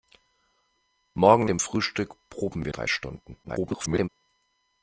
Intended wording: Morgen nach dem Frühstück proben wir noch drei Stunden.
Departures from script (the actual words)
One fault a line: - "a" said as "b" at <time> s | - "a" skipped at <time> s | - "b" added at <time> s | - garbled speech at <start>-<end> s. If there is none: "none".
- "nach" skipped at 1.4 s
- "noch" skipped at 2.7 s
- garbled speech at 3.4-4.1 s